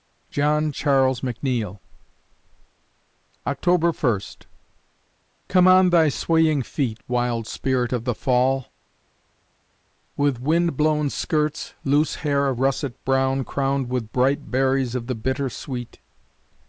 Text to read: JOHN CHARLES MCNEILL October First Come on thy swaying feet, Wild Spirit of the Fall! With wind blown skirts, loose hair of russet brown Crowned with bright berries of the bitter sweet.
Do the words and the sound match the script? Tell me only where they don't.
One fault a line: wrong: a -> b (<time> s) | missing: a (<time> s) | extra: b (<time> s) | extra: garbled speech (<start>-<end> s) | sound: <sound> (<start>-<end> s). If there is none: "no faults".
no faults